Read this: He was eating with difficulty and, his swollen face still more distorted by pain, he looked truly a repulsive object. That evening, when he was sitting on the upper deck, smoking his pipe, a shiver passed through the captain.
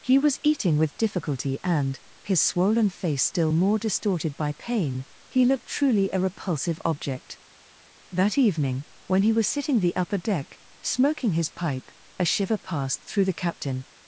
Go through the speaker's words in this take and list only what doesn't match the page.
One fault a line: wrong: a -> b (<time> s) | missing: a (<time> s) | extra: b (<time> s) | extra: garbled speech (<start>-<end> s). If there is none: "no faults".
missing: on (9.8 s)